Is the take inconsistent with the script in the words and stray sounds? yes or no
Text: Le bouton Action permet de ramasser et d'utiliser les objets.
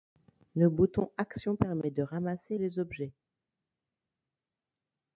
yes